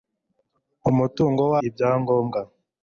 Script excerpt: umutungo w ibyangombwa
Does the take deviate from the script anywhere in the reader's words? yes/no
no